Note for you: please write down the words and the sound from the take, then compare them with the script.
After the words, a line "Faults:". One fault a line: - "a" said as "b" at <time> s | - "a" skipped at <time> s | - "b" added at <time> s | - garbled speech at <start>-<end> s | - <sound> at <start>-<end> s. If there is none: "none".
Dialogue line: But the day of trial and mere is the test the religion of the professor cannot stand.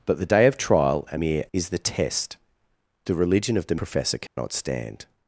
But the day of trial and mere is the test the religion of the professor cannot stand.
Faults:
- dropout at 4.3-4.4 s